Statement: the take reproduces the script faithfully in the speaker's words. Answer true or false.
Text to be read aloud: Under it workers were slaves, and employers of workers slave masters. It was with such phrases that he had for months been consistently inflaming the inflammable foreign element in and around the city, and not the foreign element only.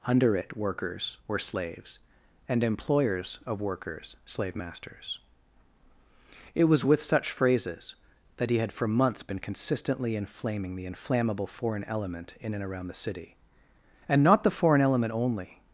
true